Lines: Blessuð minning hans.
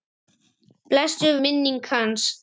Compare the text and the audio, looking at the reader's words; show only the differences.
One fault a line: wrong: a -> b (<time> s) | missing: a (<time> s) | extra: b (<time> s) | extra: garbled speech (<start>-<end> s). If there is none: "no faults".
no faults